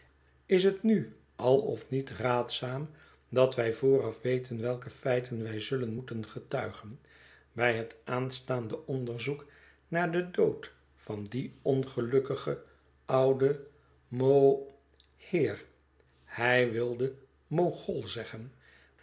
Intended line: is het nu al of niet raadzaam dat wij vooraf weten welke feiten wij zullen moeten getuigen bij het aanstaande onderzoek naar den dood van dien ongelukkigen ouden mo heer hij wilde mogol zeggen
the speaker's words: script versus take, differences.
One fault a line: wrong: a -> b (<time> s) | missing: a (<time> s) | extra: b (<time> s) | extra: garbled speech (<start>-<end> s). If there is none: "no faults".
no faults